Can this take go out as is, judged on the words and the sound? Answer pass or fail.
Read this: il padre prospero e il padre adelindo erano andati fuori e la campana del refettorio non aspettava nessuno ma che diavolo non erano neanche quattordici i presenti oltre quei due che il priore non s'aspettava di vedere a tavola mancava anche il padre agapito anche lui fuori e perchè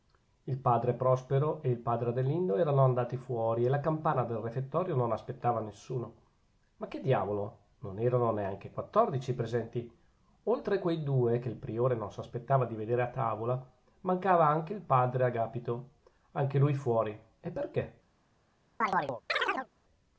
fail